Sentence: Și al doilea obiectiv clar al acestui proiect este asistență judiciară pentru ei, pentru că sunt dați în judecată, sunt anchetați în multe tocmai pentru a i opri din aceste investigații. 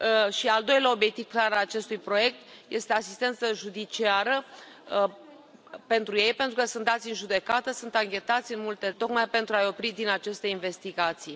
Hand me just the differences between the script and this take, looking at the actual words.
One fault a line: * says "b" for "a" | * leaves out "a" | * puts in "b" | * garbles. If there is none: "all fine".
all fine